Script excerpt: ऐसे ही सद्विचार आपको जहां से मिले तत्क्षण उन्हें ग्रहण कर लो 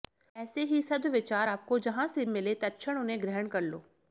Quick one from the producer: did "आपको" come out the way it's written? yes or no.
yes